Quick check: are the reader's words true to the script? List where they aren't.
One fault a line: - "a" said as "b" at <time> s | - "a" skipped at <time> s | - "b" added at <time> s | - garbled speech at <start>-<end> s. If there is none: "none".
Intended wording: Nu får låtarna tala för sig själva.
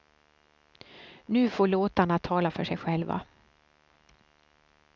none